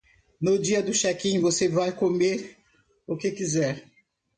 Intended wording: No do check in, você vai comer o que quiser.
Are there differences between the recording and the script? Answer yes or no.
yes